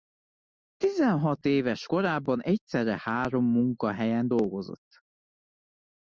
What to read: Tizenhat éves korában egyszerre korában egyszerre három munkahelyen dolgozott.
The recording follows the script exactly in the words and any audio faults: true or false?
false